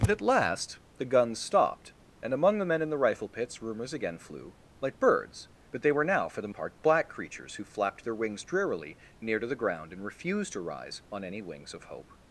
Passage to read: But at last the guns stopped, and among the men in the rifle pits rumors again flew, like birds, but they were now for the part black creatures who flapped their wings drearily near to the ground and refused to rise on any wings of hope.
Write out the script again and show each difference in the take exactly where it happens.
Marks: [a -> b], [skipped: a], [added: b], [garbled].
But at last the guns stopped, and among the men in the rifle pits rumors again flew, like birds, but they were now for the part black creatures who flapped their wings drearily near to the ground and refused to rise on any wings of hope.